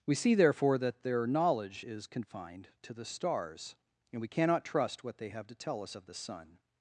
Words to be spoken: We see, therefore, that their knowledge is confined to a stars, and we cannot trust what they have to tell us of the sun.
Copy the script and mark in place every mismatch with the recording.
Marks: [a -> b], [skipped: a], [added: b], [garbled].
We see, therefore, that their knowledge is confined to [a -> the] stars, and we cannot trust what they have to tell us of the sun.